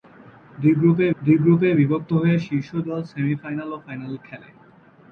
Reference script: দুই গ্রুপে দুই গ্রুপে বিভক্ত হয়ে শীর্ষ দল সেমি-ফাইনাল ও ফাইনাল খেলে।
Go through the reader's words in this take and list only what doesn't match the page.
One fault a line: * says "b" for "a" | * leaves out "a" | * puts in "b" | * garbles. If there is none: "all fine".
all fine